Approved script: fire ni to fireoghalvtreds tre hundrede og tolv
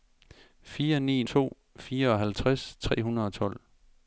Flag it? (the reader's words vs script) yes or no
no